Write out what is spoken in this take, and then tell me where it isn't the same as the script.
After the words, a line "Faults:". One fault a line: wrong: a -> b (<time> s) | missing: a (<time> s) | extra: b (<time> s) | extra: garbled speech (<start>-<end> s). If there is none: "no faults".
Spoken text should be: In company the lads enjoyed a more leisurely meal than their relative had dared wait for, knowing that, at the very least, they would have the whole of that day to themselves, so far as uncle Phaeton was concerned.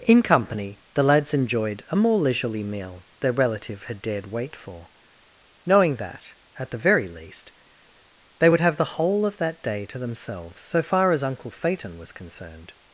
In company the lads enjoyed a more leisurely meal their relative had dared wait for, knowing that, at the very least, they would have the whole of that day to themselves, so far as uncle Phaeton was concerned.
Faults:
missing: than (3.0 s)